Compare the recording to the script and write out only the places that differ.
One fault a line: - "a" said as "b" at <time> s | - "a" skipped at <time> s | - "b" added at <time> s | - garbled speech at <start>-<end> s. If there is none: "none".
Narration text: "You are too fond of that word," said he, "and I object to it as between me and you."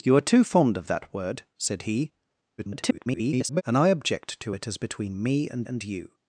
- garbled speech at 2.6-3.6 s
- "and" added at 5.6 s